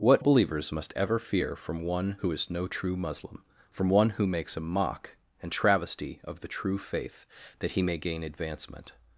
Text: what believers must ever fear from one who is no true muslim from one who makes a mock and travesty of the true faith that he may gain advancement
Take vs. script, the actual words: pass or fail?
pass